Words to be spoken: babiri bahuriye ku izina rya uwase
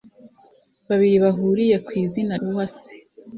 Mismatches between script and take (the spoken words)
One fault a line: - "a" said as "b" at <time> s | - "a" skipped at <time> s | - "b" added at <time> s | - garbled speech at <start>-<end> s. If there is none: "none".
- "rya" skipped at 2.3 s